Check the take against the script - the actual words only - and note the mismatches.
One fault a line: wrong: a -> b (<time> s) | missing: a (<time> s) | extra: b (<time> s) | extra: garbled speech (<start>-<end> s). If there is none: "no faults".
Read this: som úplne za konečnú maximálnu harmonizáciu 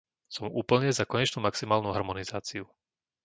no faults